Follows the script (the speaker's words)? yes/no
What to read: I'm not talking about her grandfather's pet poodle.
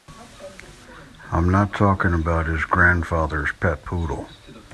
no